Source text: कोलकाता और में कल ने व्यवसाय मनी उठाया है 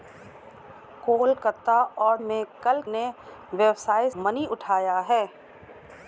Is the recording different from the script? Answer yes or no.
no